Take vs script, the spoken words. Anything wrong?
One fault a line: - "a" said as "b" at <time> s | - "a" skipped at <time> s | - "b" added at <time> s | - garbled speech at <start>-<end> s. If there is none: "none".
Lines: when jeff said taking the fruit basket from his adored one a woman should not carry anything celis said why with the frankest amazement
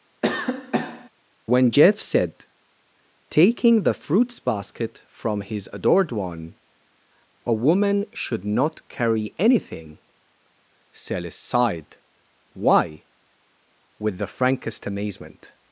- "fruit" said as "fruits" at 3.9 s
- "said" said as "sighed" at 11.4 s